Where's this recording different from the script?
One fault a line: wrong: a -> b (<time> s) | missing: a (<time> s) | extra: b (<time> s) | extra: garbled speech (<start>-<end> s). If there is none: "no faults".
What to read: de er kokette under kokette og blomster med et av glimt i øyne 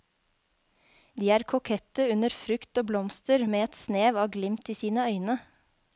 wrong: kokette -> frukt (2.4 s)
extra: snev (3.8 s)
extra: sine (4.8 s)